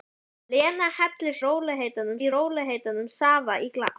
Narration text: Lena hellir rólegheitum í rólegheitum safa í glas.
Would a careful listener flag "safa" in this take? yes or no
no